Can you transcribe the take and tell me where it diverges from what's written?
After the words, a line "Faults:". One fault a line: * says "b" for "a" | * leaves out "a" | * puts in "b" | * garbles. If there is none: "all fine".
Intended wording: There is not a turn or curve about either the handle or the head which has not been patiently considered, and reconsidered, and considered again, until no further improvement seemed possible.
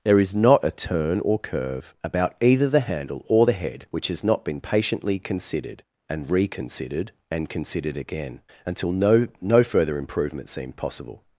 There is not a turn or curve about either the handle or the head which has not been patiently considered, and reconsidered, and considered again, until no no further improvement seemed possible.
Faults:
* puts in "no"